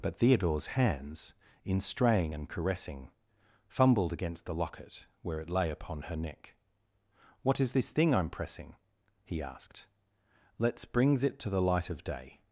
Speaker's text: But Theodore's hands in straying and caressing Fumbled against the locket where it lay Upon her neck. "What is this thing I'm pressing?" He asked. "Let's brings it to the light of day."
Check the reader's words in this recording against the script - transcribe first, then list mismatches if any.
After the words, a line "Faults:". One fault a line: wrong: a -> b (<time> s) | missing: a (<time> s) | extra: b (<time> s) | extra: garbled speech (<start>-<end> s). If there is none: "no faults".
But Theodore's hands in straying and caressing Fumbled against the locket where it lay Upon her neck. "What is this thing I'm pressing?" He asked. "Let's brings it to the light of day."
Faults:
no faults